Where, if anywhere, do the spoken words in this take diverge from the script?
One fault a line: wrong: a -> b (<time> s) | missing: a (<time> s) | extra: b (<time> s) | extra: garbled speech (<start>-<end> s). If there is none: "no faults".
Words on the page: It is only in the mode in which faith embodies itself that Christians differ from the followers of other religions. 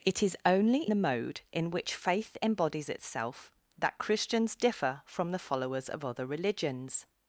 missing: in (0.9 s)